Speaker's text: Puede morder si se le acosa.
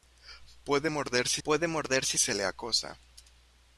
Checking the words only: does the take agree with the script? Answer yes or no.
no